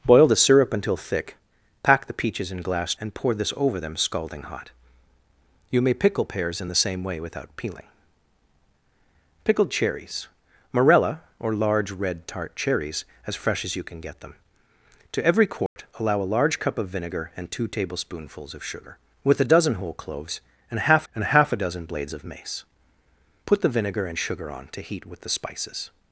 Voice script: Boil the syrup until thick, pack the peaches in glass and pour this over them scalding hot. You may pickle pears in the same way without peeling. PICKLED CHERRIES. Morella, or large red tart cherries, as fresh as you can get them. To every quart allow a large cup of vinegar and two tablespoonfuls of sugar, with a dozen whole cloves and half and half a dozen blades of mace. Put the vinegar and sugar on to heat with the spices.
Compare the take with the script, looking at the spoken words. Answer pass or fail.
pass